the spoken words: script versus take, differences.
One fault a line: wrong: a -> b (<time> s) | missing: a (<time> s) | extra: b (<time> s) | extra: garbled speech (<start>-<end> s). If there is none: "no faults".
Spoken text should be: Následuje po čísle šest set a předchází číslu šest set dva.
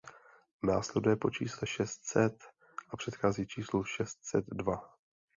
no faults